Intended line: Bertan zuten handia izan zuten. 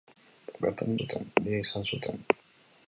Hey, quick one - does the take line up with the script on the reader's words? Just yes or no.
yes